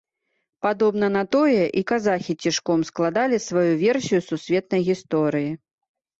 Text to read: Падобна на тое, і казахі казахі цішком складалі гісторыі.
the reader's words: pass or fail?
fail